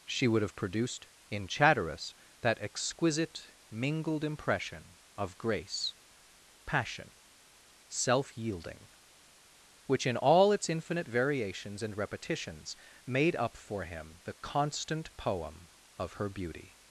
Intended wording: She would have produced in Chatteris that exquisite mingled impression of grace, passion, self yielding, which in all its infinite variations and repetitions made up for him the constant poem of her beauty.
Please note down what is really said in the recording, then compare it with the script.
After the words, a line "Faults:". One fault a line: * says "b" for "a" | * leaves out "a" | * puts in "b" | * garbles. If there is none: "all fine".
She would have produced in Chatteris that exquisite mingled impression of grace, passion, self yielding, which in all its infinite variations and repetitions made up for him the constant poem of her beauty.
Faults:
all fine